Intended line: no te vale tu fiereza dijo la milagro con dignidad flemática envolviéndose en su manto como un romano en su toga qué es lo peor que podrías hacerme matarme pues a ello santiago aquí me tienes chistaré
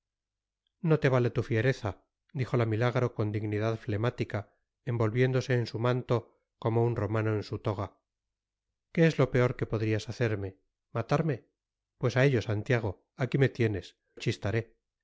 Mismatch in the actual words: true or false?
false